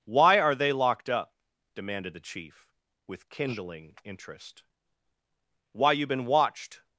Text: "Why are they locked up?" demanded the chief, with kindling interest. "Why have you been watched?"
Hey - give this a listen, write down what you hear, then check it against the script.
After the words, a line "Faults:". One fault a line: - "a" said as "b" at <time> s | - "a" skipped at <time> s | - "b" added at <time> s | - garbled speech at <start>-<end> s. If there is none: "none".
"Why are they locked up?" demanded the chief, with kindling interest. "Why you been watched?"
Faults:
- "have" skipped at 5.9 s